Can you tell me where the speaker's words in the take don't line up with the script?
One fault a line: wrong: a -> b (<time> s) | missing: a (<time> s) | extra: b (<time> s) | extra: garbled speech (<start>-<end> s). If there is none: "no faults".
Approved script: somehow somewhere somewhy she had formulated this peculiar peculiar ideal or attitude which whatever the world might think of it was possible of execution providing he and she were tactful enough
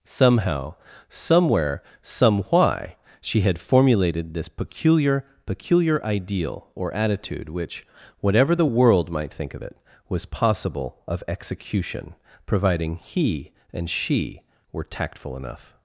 no faults